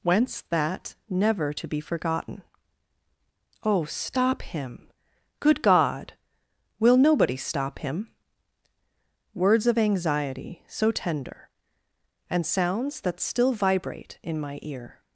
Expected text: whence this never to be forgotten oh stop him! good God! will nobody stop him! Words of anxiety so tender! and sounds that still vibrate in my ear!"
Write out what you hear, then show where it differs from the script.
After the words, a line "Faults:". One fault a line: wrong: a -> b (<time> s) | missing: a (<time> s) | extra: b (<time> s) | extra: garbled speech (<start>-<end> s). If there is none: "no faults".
whence that never to be forgotten oh stop him! good God! will nobody stop him! Words of anxiety so tender! and sounds that still vibrate in my ear!"
Faults:
wrong: this -> that (0.5 s)